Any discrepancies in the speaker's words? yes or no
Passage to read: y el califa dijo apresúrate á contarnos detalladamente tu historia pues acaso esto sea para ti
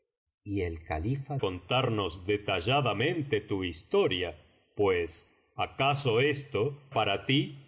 yes